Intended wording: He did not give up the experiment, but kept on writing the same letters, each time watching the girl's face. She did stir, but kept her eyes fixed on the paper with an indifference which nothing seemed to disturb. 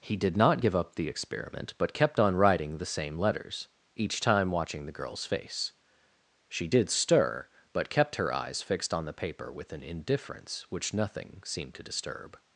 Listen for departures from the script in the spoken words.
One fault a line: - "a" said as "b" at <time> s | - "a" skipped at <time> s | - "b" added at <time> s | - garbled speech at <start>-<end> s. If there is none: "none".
none